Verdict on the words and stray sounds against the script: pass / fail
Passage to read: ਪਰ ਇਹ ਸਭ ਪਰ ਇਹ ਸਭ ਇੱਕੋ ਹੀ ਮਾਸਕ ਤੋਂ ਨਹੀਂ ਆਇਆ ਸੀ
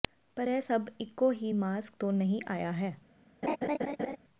fail